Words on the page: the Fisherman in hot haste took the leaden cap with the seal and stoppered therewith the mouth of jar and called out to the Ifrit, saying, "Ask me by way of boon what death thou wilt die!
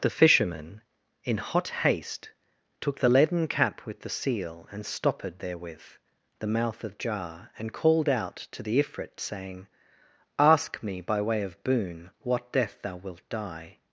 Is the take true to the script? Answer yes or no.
yes